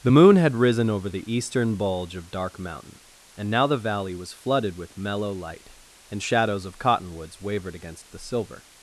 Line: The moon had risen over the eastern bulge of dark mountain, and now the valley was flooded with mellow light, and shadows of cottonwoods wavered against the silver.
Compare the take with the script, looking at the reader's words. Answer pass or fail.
pass